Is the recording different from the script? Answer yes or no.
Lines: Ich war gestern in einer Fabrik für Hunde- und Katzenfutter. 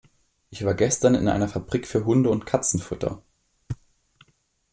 no